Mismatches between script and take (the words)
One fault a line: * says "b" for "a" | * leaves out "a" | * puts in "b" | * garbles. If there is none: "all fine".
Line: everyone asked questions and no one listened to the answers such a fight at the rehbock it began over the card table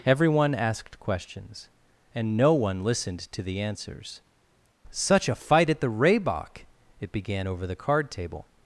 all fine